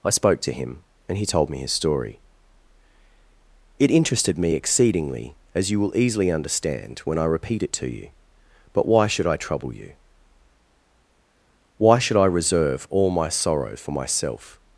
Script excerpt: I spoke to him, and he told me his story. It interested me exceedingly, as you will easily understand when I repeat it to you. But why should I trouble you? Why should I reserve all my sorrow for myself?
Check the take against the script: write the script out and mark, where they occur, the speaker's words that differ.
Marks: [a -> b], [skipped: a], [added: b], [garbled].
I spoke to him, and he told me his story. It interested me exceedingly, as you will easily understand when I repeat it to you. But why should I trouble you? Why should I reserve all my sorrow for myself?